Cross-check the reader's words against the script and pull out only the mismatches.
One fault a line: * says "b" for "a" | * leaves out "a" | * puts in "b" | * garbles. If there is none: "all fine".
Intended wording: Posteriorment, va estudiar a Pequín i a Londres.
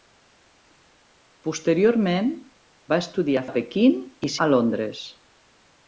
all fine